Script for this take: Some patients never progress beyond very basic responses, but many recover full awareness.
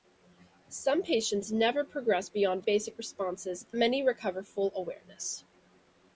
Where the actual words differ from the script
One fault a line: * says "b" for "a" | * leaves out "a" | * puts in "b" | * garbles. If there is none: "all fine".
* leaves out "very"
* leaves out "but"